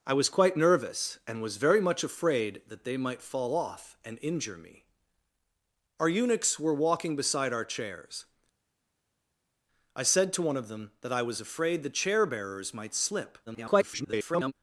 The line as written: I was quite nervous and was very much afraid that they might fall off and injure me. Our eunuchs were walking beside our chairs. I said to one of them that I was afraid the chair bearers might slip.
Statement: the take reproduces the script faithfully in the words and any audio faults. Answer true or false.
false